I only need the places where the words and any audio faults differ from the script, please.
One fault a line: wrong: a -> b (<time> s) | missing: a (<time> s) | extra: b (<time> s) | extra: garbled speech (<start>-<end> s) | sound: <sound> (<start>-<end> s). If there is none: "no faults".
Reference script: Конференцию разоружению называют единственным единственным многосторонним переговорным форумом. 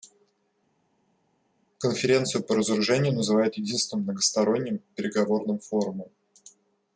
extra: по (2.4 s)
missing: единственным (4.0 s)